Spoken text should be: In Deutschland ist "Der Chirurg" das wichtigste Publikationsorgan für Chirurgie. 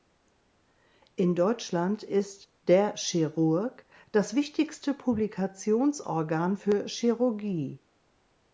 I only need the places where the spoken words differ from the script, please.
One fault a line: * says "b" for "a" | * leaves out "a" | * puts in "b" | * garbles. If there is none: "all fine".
all fine